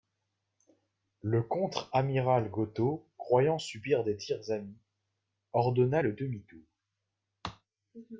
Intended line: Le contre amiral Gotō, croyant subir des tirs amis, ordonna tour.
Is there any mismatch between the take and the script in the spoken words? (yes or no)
yes